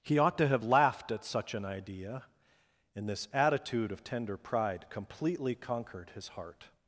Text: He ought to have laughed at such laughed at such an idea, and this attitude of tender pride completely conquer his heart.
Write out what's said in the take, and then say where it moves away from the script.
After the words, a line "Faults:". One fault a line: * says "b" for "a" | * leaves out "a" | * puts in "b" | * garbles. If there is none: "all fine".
He ought to have laughed at such an idea, and this attitude of tender pride completely conquered his heart.
Faults:
* leaves out "laughed at such"
* says "conquered" for "conquer"